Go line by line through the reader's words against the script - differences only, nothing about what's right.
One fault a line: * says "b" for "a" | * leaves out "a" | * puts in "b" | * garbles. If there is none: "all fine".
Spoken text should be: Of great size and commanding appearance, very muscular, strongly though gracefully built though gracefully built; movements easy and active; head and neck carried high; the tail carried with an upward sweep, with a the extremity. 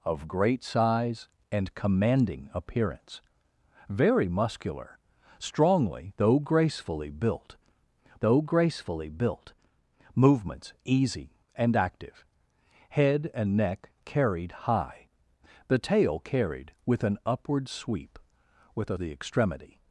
all fine